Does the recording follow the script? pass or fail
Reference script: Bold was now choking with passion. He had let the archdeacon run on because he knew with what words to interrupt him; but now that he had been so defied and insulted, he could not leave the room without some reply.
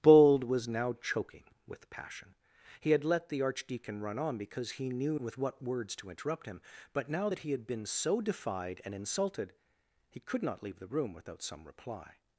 pass